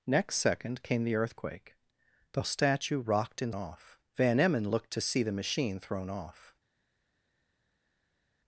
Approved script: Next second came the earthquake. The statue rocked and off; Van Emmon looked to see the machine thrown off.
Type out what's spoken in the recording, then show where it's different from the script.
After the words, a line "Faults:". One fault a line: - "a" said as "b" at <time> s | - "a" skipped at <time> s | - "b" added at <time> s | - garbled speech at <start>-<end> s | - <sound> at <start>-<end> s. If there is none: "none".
Next second came the earthquake. The statue rocked and off; Van Emmon looked to see the machine thrown off.
Faults:
none